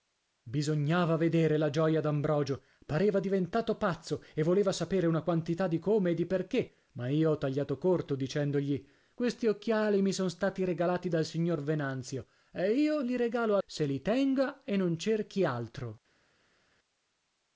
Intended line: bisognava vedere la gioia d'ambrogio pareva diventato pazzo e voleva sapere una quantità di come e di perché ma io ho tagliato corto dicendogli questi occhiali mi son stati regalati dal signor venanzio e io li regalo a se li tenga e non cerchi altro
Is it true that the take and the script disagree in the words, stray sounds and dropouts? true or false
false